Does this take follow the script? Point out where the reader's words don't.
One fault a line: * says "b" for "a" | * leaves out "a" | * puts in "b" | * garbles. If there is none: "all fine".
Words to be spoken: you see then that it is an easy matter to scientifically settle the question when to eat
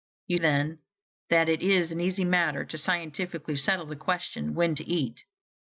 * leaves out "see"